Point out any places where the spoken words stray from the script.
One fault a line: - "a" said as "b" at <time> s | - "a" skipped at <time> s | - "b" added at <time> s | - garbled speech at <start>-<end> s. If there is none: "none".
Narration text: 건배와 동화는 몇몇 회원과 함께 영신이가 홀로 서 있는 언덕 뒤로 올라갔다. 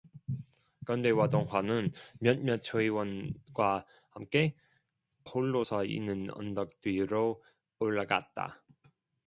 - "영신이가" skipped at 4.6 s